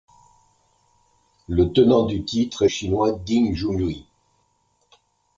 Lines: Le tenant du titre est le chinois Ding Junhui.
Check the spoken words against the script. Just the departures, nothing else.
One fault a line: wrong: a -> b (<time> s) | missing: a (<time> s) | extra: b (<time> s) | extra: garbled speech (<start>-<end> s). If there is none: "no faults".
missing: le (2.7 s)